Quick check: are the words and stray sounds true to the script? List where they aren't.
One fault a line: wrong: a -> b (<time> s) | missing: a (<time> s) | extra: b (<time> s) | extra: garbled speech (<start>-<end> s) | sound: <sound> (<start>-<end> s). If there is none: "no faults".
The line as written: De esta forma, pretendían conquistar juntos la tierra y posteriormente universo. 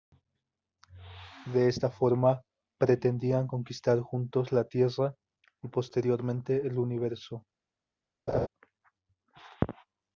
extra: el (6.7 s)
sound: laugh (8.3-8.5 s)